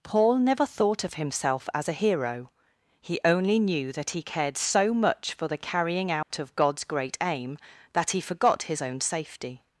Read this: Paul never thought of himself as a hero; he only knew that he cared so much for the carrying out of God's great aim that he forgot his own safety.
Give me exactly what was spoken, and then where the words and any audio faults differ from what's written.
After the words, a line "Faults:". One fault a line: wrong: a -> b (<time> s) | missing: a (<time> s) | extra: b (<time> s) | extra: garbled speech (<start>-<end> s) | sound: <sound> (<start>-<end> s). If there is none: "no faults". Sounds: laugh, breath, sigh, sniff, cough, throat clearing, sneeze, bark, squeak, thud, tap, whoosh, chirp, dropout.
Paul never thought of himself as a hero; he only knew that he cared so much for the carrying out of God's great aim that he forgot his own safety.
Faults:
sound: dropout (6.2-6.3 s)